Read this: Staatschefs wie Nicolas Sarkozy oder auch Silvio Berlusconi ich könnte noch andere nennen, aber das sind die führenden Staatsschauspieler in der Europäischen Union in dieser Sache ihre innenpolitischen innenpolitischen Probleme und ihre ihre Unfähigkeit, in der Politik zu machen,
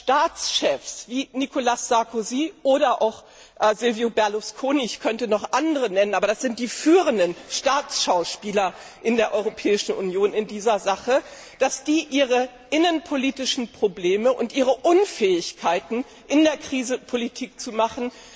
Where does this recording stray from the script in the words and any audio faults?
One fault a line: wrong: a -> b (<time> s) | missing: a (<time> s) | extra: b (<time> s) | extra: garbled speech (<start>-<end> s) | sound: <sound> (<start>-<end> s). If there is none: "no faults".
missing: innenpolitischen (13.7 s)
missing: ihre (14.8 s)
extra: Krise (16.6 s)